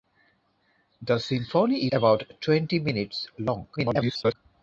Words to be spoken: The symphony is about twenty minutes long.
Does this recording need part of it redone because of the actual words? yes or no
yes